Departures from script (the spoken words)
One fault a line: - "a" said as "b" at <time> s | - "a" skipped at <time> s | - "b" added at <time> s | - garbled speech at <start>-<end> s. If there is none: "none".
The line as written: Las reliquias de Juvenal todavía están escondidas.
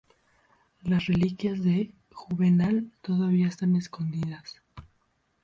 none